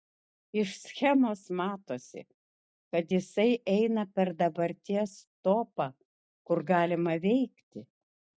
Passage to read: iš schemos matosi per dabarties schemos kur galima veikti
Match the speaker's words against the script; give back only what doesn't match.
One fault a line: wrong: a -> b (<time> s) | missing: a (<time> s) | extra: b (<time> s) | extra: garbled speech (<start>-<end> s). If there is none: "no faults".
extra: kad jisai eina (2.9 s)
wrong: schemos -> topą (5.5 s)